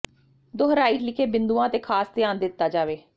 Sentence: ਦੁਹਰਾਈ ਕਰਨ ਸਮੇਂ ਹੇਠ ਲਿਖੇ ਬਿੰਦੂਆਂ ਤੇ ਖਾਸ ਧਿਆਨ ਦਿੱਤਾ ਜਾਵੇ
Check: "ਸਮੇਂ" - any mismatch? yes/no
yes